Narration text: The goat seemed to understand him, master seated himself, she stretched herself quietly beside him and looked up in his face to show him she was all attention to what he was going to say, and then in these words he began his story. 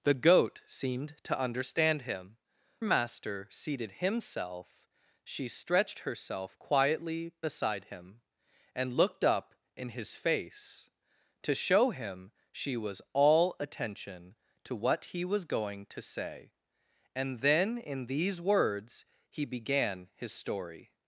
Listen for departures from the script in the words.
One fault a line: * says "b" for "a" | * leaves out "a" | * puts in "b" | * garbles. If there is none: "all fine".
all fine